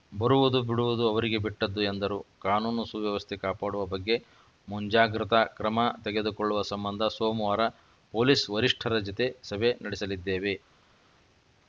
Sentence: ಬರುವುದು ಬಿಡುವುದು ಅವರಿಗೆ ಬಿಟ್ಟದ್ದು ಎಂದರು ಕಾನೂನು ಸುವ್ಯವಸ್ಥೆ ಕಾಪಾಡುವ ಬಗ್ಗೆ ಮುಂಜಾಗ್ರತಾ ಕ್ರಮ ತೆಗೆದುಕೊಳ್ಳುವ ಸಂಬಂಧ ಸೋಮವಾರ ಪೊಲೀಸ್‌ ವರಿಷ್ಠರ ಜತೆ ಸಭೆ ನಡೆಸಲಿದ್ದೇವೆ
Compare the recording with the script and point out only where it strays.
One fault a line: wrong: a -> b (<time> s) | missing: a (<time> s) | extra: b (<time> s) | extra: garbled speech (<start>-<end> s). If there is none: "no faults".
no faults